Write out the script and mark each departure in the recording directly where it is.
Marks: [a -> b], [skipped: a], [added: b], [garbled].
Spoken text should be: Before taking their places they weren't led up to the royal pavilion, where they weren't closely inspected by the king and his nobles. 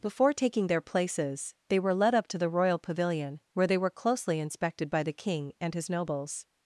Before taking their places they [weren't -> were] led up to the royal pavilion, where they [weren't -> were] closely inspected by the king and his nobles.